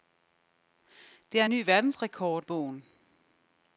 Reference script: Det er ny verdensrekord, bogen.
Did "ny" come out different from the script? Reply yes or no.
no